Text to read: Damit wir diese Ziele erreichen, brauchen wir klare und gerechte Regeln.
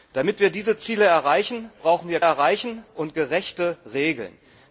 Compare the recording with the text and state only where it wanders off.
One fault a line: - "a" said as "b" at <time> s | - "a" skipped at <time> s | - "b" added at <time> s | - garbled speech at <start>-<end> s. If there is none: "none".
- "klare" said as "erreichen" at 2.2 s